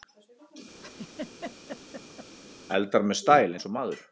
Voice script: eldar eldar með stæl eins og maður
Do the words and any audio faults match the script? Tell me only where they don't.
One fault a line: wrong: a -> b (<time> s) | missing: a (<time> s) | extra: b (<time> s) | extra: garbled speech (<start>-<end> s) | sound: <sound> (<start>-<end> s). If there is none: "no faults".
sound: laugh (0.8-2.3 s)
missing: eldar (3.1 s)